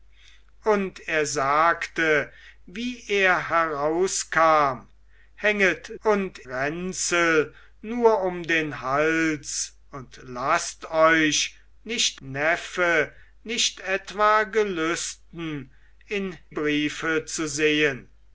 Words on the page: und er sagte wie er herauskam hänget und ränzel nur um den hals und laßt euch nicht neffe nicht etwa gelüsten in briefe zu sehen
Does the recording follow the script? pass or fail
pass